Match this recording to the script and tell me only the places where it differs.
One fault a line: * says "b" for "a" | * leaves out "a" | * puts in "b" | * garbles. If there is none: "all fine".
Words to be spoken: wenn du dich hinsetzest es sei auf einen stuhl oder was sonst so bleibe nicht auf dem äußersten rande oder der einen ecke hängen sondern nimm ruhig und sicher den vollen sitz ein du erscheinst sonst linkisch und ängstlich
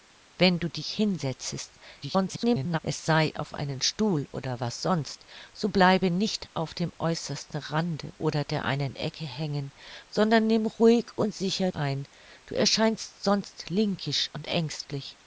* garbles
* leaves out "den vollen sitz"